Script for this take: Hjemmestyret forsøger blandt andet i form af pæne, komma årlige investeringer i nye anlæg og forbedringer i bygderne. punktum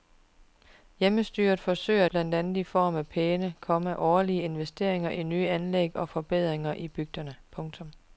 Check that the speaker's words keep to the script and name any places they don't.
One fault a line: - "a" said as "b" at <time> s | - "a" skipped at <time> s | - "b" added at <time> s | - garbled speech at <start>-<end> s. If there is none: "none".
none